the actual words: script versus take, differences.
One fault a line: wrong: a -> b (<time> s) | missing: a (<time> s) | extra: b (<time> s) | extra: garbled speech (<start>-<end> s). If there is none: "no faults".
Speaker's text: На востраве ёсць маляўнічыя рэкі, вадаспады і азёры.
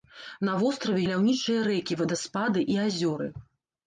missing: ёсць (1.0 s)